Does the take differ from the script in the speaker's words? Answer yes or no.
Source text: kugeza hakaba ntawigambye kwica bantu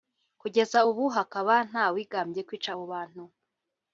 yes